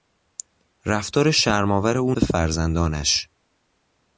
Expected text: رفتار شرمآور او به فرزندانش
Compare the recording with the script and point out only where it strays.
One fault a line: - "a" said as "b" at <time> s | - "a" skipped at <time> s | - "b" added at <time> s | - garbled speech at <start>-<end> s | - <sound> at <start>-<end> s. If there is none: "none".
none